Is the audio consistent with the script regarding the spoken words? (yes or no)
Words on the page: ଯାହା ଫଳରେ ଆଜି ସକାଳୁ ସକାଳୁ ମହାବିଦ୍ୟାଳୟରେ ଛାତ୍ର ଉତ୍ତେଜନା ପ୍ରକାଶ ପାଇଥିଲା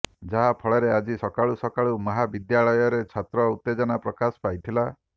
yes